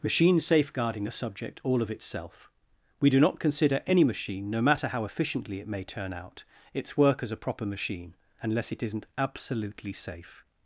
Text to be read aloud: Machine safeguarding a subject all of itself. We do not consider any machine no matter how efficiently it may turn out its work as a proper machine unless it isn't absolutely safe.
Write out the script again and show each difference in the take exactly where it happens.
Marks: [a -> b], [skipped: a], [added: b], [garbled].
Machine safeguarding a subject all of itself. We do not consider any machine no matter how efficiently it may turn out its work as a proper machine unless it isn't absolutely safe.